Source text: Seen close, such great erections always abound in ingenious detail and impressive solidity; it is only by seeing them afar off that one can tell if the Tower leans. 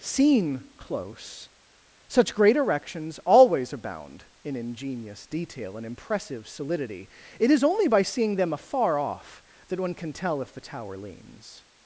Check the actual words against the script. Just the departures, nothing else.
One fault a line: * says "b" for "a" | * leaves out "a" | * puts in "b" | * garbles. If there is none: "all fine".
all fine